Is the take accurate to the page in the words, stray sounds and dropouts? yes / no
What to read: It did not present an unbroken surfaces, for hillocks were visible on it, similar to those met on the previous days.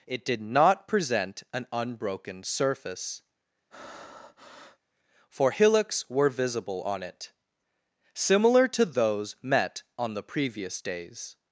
no